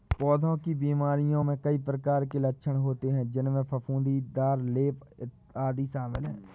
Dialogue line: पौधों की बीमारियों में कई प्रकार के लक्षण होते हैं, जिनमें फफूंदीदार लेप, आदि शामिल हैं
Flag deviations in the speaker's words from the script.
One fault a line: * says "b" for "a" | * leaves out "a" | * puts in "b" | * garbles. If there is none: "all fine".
all fine